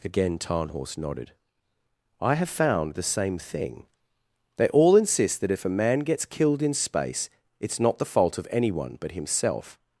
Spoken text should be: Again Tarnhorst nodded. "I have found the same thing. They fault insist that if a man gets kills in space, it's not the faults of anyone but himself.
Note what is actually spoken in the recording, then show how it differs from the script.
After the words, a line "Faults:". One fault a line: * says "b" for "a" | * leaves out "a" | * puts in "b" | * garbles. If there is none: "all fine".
Again Tarnhorst nodded. "I have found the same thing. They all insist that if a man gets killed in space, it's not the fault of anyone but himself.
Faults:
* says "all" for "fault"
* says "killed" for "kills"
* says "fault" for "faults"